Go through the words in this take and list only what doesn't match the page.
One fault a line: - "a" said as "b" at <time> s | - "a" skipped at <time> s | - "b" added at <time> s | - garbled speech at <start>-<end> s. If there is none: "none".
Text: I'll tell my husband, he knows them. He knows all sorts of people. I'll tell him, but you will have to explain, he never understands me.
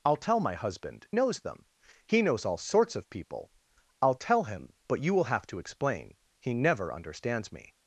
- "he" skipped at 1.1 s